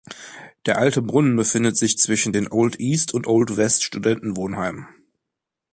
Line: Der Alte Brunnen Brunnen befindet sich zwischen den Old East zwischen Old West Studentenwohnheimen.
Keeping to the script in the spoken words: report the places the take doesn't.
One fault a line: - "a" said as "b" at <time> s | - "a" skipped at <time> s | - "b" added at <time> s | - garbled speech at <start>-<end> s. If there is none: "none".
- "Brunnen" skipped at 1.4 s
- "zwischen" said as "und" at 3.1 s